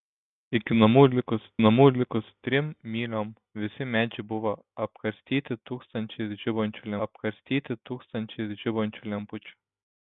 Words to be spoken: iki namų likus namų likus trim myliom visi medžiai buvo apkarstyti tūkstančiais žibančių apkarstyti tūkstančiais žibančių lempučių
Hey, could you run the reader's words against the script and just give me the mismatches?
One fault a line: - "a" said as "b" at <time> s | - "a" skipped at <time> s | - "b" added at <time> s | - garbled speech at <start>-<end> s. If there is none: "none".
none